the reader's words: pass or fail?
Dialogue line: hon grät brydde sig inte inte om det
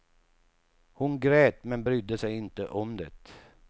fail